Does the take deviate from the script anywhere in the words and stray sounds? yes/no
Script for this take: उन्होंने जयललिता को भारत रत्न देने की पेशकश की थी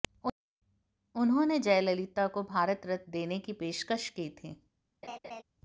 yes